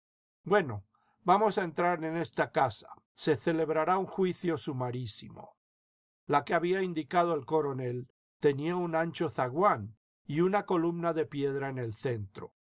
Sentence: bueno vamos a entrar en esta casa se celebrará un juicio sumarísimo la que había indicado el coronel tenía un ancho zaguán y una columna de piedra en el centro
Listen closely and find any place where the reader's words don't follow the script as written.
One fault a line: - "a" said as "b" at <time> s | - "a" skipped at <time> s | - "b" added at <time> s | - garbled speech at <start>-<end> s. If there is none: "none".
none